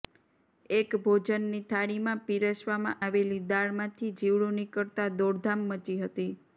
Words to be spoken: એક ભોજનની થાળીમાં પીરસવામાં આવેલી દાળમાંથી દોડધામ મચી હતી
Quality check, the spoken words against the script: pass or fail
fail